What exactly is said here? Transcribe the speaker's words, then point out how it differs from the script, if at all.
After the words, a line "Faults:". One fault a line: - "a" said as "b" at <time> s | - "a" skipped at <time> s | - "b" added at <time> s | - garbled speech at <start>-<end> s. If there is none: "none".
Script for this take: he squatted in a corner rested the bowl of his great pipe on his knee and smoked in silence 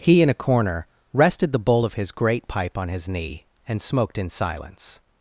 he in a corner rested the bowl of his great pipe on his knee and smoked in silence
Faults:
- "squatted" skipped at 0.2 s